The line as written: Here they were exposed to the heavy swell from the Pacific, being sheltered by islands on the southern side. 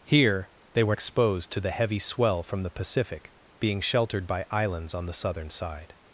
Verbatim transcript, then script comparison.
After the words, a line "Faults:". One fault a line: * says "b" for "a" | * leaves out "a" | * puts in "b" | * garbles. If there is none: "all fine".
Here they were exposed to the heavy swell from the Pacific, being sheltered by islands on the southern side.
Faults:
all fine